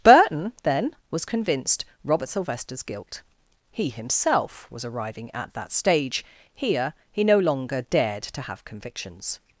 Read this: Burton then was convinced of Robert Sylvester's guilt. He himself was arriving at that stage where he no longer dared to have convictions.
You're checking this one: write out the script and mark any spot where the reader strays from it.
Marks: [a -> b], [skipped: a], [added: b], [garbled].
Burton then was convinced [skipped: of] Robert Sylvester's guilt. He himself was arriving at that stage [where -> here] he no longer dared to have convictions.